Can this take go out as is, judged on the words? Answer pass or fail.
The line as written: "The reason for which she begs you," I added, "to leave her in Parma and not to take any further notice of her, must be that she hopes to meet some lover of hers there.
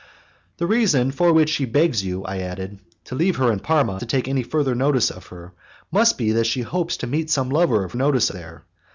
fail